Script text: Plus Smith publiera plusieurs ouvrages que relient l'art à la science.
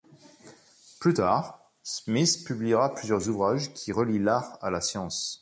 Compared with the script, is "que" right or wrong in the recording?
wrong